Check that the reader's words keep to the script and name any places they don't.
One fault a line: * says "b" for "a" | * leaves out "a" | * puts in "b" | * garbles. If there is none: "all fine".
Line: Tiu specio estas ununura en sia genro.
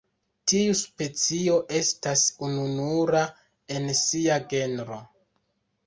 all fine